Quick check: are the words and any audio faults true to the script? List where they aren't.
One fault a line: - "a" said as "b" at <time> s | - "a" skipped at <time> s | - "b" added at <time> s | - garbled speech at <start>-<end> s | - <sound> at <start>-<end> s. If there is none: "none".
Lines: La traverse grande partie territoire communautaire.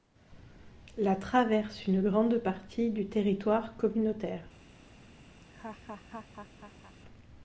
- "une" added at 1.9 s
- "du" added at 2.9 s
- laugh at 5.4-7.0 s